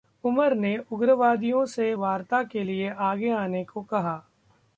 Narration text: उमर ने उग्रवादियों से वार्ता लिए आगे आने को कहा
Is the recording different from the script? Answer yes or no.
yes